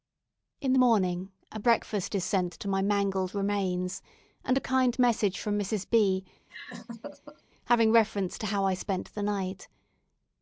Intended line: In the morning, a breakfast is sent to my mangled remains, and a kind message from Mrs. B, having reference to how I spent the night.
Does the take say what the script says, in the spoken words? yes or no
yes